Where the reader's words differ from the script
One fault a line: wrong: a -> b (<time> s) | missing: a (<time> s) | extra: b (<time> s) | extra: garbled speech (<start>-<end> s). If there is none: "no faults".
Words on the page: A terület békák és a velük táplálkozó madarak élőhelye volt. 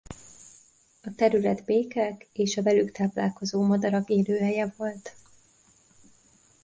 no faults